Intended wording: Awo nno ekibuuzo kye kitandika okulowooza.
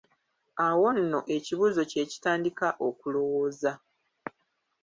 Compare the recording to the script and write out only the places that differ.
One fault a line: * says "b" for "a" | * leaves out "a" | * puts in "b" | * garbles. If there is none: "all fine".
all fine